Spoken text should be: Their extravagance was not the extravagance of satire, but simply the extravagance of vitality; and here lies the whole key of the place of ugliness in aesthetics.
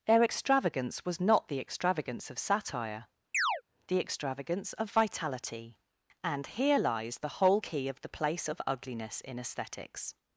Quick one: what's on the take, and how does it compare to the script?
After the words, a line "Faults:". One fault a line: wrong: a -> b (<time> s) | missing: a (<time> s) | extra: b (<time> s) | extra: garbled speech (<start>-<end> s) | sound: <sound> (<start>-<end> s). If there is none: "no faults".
Their extravagance was not the extravagance of satire, the extravagance of vitality; and here lies the whole key of the place of ugliness in aesthetics.
Faults:
missing: but simply (3.1 s)
sound: chirp (3.3-3.6 s)